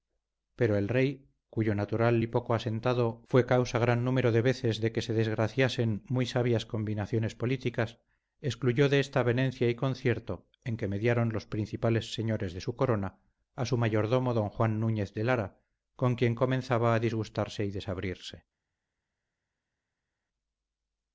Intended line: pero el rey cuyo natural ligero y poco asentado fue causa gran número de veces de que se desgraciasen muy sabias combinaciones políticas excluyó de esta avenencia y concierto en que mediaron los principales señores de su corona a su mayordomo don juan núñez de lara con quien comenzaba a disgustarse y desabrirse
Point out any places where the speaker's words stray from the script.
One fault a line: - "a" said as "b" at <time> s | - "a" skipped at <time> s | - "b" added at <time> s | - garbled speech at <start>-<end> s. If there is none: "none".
- "ligero" skipped at 2.2 s